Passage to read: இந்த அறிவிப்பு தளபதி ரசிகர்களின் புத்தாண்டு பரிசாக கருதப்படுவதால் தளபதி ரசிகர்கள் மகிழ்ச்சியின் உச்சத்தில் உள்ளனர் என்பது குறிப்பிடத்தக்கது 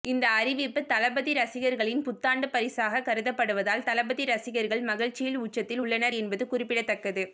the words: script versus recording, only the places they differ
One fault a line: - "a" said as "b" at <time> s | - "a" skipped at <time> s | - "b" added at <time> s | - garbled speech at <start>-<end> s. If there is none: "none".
none